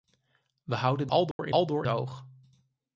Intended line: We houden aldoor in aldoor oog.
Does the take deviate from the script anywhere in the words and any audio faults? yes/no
yes